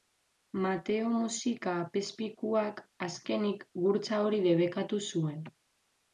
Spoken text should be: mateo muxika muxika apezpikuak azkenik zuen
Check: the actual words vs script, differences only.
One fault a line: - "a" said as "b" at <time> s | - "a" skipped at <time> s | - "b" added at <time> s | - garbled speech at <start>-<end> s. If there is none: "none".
- "muxika" skipped at 1.7 s
- "gurtza hori debekatu" added at 3.9 s